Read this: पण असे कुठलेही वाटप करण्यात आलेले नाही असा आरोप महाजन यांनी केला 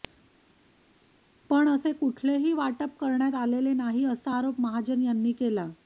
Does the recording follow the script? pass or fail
pass